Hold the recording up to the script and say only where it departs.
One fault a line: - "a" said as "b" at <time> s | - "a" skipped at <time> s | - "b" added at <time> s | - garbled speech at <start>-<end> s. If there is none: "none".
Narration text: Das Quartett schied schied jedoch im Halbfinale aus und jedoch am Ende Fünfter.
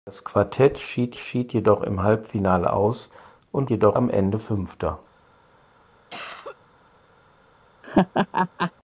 none